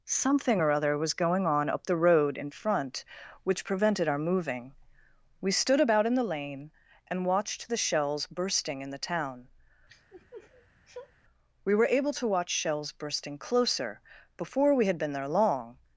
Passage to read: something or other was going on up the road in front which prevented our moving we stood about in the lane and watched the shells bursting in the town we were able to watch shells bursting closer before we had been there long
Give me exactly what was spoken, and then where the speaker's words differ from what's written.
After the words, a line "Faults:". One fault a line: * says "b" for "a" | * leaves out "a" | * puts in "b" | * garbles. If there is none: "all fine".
something or other was going on up the road in front which prevented our moving we stood about in the lane and watched the shells bursting in the town we were able to watch shells bursting closer before we had been there long
Faults:
all fine